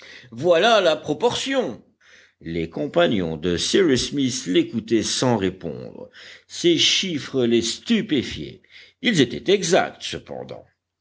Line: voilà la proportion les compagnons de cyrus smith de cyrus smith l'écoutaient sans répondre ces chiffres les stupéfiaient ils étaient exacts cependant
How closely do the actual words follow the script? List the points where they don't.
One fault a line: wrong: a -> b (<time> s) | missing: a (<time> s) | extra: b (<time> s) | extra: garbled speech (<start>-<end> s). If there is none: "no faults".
missing: de cyrus smith (4.5 s)